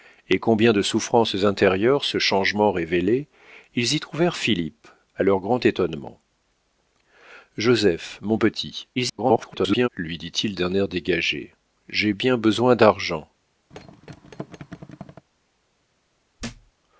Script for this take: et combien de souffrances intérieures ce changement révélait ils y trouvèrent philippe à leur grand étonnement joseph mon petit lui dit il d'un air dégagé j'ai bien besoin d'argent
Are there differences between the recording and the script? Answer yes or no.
yes